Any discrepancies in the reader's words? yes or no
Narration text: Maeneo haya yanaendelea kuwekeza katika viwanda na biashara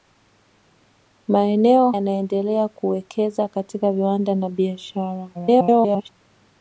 yes